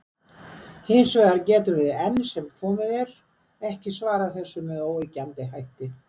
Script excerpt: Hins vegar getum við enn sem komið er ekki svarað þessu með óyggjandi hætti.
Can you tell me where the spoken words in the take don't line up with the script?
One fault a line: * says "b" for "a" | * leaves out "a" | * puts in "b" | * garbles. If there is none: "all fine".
all fine